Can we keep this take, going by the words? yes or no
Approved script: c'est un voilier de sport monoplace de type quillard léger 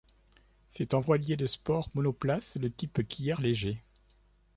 yes